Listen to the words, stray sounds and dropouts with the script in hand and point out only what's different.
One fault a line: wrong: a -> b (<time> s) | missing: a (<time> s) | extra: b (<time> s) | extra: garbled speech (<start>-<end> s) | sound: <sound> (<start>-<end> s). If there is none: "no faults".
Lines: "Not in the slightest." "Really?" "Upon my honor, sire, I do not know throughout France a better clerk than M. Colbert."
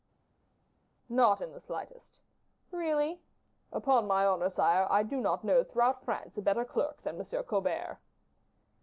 no faults